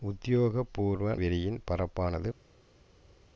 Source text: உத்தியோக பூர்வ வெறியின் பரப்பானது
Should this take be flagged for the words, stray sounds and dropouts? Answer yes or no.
no